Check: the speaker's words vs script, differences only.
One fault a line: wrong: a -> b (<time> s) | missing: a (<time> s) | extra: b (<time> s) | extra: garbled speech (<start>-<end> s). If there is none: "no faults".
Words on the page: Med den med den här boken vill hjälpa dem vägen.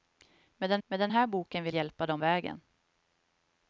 no faults